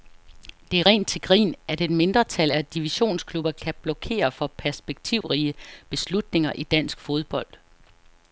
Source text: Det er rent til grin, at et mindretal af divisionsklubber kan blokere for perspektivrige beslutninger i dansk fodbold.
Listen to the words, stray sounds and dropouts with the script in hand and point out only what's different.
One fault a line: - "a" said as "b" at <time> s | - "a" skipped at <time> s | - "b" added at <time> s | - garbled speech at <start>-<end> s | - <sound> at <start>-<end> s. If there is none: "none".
- dropout at 5.2-5.2 s